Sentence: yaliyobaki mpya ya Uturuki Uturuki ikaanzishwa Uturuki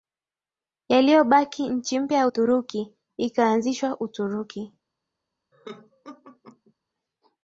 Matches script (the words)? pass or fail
fail